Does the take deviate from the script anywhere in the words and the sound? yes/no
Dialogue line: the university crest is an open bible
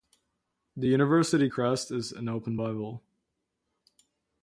no